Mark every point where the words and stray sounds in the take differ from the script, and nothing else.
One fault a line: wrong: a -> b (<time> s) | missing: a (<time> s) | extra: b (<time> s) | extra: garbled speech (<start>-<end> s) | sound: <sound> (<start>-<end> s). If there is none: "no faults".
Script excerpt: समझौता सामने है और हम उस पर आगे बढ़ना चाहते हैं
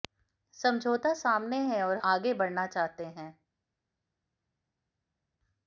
missing: हम उस पर (2.0 s)